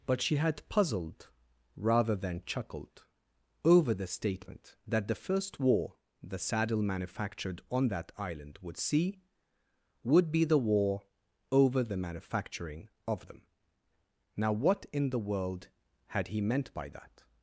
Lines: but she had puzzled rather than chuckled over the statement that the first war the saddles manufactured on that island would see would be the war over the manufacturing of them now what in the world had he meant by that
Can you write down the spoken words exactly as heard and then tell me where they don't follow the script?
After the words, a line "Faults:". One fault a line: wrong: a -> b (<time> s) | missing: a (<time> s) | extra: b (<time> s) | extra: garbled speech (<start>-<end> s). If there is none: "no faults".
but she had puzzled rather than chuckled over the statement that the first war the saddle manufactured on that island would see would be the war over the manufacturing of them now what in the world had he meant by that
Faults:
wrong: saddles -> saddle (6.4 s)